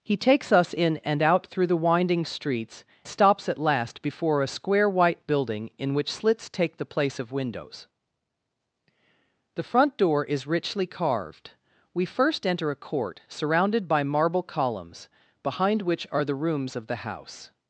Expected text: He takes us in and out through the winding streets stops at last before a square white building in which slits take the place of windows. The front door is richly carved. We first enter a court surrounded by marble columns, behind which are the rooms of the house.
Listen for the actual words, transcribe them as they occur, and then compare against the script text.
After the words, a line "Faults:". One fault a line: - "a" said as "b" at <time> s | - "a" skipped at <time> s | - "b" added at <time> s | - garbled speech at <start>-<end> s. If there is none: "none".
He takes us in and out through the winding streets stops at last before a square white building in which slits take the place of windows. The front door is richly carved. We first enter a court surrounded by marble columns, behind which are the rooms of the house.
Faults:
none